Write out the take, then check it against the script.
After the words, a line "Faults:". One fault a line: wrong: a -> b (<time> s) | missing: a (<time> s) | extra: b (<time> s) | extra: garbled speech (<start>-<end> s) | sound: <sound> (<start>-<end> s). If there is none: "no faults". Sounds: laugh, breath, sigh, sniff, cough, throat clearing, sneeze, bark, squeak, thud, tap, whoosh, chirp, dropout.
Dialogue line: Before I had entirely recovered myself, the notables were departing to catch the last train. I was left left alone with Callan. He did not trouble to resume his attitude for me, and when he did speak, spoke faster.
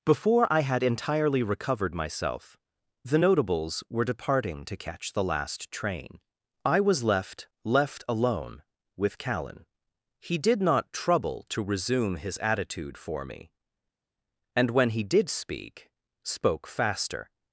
Before I had entirely recovered myself, the notables were departing to catch the last train. I was left left alone with Callan. He did not trouble to resume his attitude for me, and when he did speak, spoke faster.
Faults:
no faults